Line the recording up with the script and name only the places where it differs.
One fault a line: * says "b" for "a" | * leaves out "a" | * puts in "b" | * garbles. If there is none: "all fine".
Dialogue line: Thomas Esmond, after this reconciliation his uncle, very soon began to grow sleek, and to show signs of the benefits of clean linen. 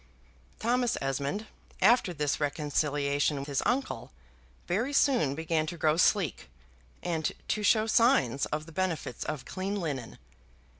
all fine